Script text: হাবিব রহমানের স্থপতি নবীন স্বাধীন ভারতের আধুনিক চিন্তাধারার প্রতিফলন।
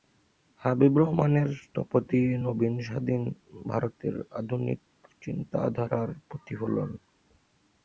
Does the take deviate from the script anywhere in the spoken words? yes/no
no